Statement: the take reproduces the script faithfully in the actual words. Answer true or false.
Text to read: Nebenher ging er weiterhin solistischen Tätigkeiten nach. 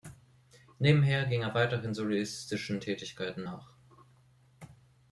true